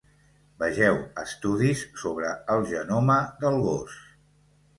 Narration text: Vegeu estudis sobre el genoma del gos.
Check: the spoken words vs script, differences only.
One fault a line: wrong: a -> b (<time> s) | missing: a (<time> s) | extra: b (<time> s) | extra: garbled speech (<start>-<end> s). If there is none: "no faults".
no faults